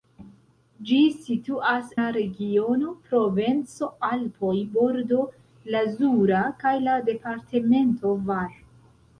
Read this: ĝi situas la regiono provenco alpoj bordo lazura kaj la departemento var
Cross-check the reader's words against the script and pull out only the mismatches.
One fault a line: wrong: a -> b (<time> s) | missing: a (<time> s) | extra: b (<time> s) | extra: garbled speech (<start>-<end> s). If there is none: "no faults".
no faults